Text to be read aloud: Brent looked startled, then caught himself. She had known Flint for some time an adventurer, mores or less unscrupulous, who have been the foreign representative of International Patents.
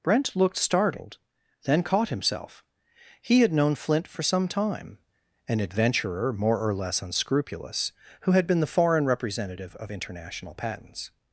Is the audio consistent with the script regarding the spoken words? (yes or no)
no